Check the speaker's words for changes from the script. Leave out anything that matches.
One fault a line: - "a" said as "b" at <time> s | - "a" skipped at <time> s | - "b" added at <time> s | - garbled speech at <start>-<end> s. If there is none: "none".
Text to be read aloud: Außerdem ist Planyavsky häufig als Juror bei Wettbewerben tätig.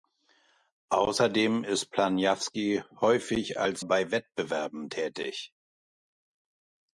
- "Juror" skipped at 3.9 s